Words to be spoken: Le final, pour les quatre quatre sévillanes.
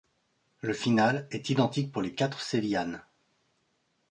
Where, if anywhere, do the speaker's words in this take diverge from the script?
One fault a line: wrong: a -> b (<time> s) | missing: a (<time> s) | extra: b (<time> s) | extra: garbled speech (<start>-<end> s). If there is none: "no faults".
extra: est identique (1.3 s)
missing: quatre (2.4 s)